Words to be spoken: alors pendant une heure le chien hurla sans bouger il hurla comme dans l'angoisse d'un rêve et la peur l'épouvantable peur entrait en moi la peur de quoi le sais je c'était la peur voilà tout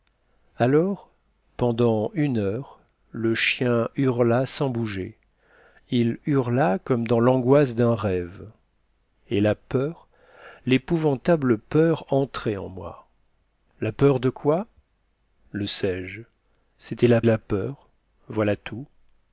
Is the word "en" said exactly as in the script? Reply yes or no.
yes